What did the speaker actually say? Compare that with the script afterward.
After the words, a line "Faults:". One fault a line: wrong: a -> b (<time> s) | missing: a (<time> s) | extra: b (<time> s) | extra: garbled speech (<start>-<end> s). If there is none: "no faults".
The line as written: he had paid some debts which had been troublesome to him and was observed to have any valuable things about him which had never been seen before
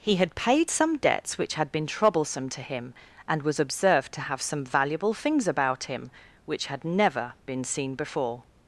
he had paid some debts which had been troublesome to him and was observed to have some valuable things about him which had never been seen before
Faults:
wrong: any -> some (4.4 s)